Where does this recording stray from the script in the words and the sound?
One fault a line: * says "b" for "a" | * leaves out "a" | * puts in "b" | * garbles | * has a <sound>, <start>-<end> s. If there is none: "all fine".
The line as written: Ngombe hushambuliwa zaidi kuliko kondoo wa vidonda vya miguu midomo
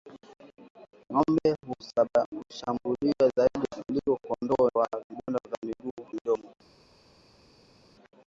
all fine